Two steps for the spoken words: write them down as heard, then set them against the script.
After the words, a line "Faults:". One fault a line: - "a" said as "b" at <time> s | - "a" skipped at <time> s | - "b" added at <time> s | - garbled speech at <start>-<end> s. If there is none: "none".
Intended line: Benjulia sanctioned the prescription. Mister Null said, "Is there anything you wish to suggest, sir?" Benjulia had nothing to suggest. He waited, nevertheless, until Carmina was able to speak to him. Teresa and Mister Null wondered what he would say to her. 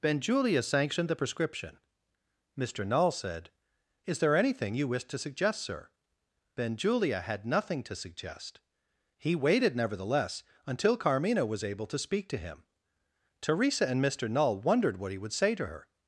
Benjulia sanctioned the prescription. Mister Null said, "Is there anything you wish to suggest, sir?" Benjulia had nothing to suggest. He waited, nevertheless, until Carmina was able to speak to him. Teresa and Mister Null wondered what he would say to her.
Faults:
none